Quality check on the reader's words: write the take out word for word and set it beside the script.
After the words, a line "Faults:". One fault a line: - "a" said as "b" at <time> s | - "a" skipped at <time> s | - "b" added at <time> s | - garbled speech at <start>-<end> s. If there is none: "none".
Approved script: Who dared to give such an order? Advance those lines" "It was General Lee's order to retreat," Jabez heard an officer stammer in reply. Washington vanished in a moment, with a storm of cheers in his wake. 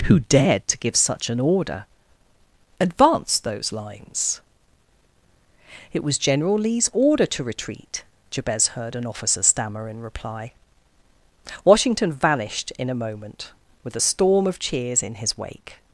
Who dared to give such an order? Advance those lines" "It was General Lee's order to retreat," Jabez heard an officer stammer in reply. Washington vanished in a moment, with a storm of cheers in his wake.
Faults:
none